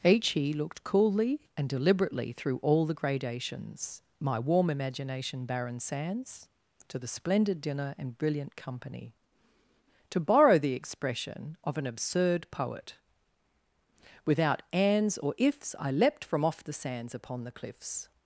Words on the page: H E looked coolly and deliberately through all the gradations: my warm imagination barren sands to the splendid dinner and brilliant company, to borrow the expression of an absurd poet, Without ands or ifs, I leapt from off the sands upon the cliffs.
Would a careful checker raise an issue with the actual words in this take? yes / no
no